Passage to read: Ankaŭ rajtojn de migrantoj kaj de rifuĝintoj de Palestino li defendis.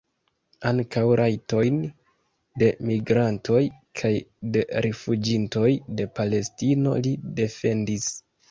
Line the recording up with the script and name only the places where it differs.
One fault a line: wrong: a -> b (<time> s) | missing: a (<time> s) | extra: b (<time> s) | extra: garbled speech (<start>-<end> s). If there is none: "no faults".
no faults